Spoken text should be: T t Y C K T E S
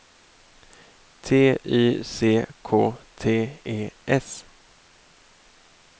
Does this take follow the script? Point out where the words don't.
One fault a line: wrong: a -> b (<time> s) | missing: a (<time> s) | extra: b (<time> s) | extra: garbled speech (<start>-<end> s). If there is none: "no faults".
missing: t (1.6 s)